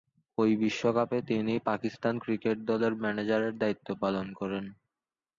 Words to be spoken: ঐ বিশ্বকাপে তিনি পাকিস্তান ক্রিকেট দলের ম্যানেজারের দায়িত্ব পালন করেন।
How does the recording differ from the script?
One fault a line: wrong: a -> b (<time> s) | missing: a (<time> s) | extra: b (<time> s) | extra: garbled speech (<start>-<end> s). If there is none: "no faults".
no faults